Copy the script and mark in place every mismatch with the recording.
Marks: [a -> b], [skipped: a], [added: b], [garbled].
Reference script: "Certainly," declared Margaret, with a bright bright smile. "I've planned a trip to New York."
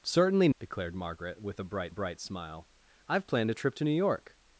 "Certainly," declared Margaret, with a bright bright smile. "I've planned a trip to New York."